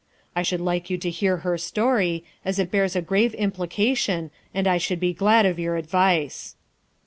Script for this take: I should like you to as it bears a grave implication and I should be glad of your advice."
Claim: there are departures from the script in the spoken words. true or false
true